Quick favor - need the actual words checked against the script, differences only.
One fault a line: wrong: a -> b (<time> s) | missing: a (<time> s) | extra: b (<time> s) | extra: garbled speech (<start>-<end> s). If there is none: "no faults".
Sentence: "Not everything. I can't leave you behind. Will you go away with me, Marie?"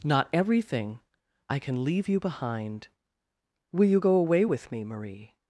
wrong: can't -> can (1.6 s)